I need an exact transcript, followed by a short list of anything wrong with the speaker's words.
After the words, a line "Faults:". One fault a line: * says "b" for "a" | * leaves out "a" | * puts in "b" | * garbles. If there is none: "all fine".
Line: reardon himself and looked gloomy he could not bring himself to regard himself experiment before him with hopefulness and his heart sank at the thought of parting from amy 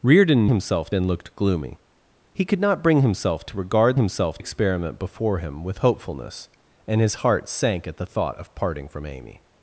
reardon himself and looked gloomy he could not bring himself to regard himself experiment before him with hopefulness and his heart sank at the thought of parting from amy
Faults:
all fine